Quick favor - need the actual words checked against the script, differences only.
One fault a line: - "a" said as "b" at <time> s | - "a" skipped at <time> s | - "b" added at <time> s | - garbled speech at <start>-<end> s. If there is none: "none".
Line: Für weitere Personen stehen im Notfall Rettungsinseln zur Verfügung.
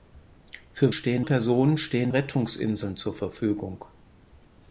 - "weitere" said as "stehen" at 0.9 s
- "im Notfall" skipped at 2.1 s